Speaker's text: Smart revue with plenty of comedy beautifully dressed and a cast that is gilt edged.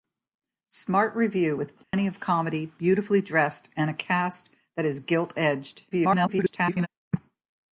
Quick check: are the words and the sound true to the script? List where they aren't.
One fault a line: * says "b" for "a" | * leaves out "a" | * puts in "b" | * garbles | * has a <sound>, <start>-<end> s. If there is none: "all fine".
* has a dropout, 1.8-1.9 s
* garbles